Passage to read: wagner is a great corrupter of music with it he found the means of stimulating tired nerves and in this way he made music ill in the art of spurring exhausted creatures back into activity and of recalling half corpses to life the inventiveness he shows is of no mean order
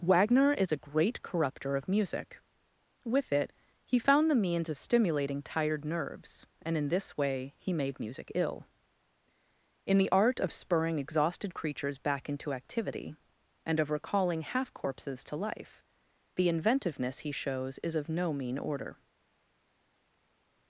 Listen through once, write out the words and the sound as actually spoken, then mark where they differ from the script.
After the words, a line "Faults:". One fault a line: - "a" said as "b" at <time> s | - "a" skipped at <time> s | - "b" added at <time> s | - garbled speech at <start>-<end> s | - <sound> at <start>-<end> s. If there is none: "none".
wagner is a great corrupter of music with it he found the means of stimulating tired nerves and in this way he made music ill in the art of spurring exhausted creatures back into activity and of recalling half corpses to life the inventiveness he shows is of no mean order
Faults:
none